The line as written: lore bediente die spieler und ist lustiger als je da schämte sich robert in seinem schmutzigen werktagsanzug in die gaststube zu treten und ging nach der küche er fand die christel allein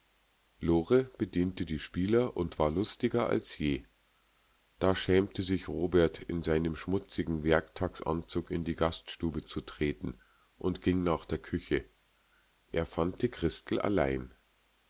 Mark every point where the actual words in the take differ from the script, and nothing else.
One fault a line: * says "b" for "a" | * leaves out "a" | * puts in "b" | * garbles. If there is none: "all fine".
* says "war" for "ist"